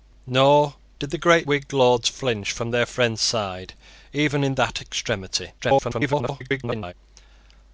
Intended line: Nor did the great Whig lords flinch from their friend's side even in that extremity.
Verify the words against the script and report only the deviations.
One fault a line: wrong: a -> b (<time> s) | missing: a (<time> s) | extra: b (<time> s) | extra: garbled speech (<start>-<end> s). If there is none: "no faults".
extra: garbled speech (5.6-6.9 s)